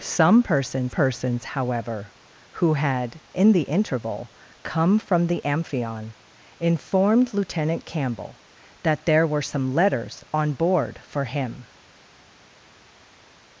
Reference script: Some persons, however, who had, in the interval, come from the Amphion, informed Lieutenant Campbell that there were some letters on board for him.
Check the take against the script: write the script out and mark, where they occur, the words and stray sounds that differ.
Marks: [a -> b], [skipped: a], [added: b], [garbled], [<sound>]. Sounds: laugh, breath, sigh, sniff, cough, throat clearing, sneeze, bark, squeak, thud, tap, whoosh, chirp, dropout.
Some persons, [added: persons] however, who had, in the interval, come from the Amphion, informed Lieutenant Campbell that there were some letters on board for him.